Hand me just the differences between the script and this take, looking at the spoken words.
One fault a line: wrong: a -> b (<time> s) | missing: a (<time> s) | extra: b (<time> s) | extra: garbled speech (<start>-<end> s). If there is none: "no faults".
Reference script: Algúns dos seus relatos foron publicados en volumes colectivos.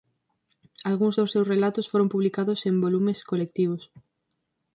no faults